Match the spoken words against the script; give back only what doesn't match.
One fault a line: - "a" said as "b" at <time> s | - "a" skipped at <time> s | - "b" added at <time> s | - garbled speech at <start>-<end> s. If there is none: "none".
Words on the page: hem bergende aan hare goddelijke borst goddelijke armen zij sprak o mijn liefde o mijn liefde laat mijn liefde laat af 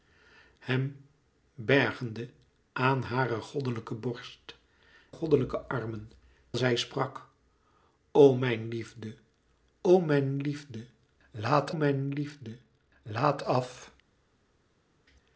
none